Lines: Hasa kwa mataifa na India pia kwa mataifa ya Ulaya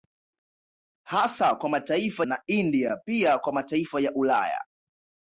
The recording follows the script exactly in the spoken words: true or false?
true